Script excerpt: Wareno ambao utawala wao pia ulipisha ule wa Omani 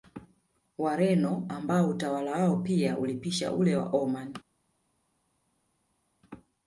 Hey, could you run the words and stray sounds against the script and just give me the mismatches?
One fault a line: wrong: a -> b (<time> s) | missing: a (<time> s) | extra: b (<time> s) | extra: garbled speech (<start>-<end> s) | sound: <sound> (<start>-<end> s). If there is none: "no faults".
no faults